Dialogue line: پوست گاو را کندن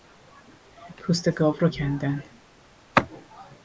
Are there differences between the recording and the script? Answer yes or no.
no